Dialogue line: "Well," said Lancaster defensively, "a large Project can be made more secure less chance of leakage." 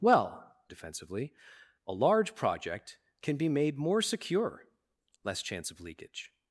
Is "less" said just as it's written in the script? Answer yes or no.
yes